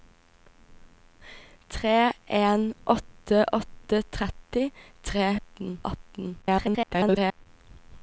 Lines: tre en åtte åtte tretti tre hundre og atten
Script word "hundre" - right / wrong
wrong